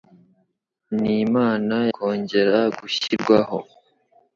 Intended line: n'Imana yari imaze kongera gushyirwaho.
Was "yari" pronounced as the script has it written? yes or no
no